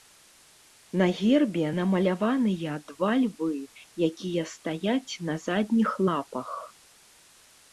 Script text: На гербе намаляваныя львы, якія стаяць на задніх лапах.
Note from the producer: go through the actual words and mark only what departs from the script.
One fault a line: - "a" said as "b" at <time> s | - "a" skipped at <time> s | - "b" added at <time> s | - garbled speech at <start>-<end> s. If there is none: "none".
- "два" added at 2.9 s